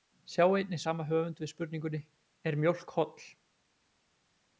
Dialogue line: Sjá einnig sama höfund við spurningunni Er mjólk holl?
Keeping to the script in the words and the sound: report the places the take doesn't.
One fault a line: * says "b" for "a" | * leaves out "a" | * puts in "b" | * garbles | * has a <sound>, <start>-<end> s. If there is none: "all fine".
all fine